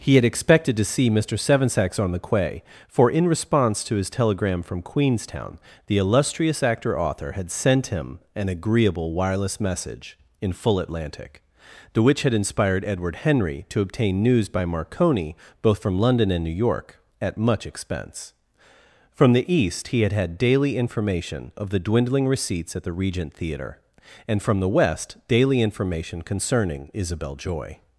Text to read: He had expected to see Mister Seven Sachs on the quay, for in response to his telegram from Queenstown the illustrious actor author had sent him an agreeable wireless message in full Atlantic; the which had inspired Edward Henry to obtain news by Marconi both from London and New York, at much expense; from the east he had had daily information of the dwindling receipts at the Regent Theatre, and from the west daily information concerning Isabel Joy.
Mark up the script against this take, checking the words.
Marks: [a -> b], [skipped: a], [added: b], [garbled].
He had expected to see Mister Seven Sachs on the quay, for in response to his telegram from Queenstown the illustrious actor author had sent him an agreeable wireless message in full Atlantic; the which had inspired Edward Henry to obtain news by Marconi both from London and New York, at much expense; from the east he had had daily information of the dwindling receipts at the Regent Theatre, and from the west daily information concerning Isabel Joy.